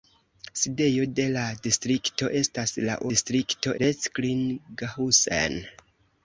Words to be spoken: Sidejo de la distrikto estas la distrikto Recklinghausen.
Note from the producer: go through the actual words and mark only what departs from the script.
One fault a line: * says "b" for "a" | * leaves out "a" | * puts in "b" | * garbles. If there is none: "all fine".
all fine